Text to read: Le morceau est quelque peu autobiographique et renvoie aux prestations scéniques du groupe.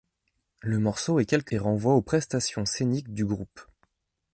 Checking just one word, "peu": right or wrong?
wrong